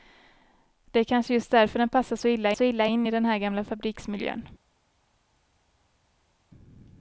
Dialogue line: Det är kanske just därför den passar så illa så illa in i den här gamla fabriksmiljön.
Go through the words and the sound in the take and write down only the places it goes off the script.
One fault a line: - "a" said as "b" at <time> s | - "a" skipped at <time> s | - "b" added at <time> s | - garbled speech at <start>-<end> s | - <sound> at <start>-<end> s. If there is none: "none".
none